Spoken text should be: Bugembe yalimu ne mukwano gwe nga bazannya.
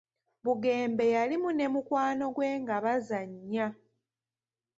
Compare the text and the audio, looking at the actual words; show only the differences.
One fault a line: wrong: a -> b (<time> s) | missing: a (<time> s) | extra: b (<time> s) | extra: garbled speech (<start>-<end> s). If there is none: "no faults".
no faults